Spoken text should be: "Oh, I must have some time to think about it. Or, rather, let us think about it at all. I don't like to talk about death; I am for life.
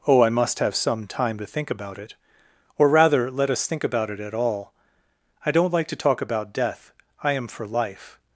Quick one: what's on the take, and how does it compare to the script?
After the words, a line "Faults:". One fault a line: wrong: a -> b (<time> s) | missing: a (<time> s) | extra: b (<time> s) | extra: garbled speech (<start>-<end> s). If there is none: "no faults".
"Oh, I must have some time to think about it. Or, rather, let us think about it at all. I don't like to talk about death; I am for life.
Faults:
no faults